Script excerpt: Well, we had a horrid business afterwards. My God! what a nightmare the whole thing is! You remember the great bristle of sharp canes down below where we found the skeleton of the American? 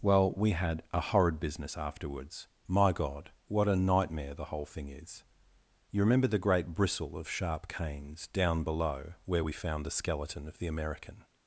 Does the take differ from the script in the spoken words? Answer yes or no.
no